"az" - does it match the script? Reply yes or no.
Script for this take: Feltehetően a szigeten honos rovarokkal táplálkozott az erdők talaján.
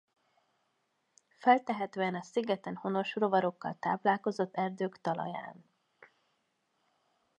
no